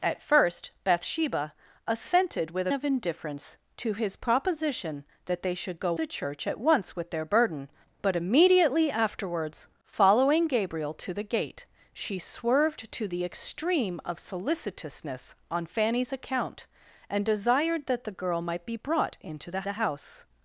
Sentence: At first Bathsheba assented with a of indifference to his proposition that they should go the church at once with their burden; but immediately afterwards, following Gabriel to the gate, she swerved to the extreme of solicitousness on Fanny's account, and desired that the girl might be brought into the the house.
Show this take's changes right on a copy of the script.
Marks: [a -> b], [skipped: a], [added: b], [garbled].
At first Bathsheba assented with a of indifference to his proposition that they should go the church at once with their burden; but immediately afterwards, following Gabriel to the gate, she swerved to the extreme of solicitousness on Fanny's account, and desired that the girl might be brought into the the house.